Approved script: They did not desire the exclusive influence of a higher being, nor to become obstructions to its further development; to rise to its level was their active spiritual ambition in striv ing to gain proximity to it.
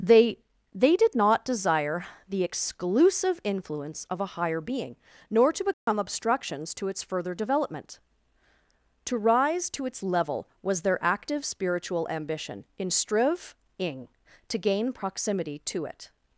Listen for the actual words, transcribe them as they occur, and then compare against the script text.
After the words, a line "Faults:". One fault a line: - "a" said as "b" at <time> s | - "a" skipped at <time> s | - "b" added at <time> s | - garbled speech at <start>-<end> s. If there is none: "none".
They they did not desire the exclusive influence of a higher being, nor to become obstructions to its further development; to rise to its level was their active spiritual ambition in striv ing to gain proximity to it.
Faults:
- "they" added at 0.7 s